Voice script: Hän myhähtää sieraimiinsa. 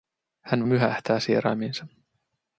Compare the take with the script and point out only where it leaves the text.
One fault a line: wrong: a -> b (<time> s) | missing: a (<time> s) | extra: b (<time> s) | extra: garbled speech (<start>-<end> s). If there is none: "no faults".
no faults